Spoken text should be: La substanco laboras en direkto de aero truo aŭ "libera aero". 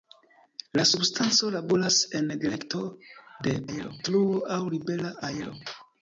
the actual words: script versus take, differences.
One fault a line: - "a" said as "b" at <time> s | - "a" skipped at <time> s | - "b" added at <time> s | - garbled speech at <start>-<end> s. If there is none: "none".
none